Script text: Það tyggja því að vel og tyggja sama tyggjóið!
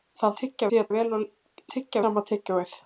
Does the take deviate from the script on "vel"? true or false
false